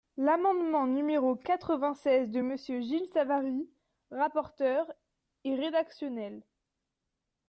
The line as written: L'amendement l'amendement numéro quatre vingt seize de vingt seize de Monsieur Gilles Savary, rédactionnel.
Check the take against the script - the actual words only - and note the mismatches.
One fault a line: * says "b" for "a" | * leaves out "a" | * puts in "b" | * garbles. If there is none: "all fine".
* leaves out "l'amendement"
* leaves out "vingt seize de"
* puts in "rapporteur est"